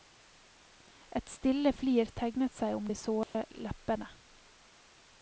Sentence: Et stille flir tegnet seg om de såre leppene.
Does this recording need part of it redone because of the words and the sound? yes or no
yes